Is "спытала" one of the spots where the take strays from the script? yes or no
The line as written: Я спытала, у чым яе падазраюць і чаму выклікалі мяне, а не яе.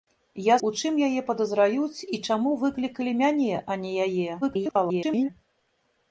yes